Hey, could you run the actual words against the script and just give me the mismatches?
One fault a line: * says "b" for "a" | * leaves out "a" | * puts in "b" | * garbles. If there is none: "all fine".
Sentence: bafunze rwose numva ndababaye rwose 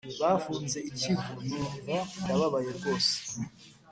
* says "ikivu" for "rwose"